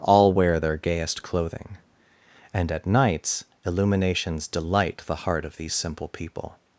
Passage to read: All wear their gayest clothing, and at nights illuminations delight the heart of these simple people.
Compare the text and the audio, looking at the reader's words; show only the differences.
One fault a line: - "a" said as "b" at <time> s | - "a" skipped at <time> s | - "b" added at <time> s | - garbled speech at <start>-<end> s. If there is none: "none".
none